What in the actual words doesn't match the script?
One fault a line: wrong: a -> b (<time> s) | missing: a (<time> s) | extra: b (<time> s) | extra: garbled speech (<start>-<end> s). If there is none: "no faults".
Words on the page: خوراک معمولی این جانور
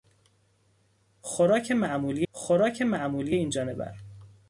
extra: خوراک معمولی (2.3 s)